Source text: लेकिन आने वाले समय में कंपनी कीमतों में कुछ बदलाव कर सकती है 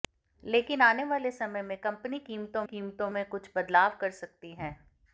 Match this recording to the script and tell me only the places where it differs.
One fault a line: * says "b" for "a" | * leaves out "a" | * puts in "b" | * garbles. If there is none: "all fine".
* puts in "कीमतों"